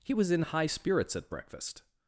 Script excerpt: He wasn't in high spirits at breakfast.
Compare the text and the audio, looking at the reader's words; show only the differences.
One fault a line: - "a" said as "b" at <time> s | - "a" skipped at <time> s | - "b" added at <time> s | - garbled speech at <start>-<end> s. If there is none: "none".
- "wasn't" said as "was" at 0.1 s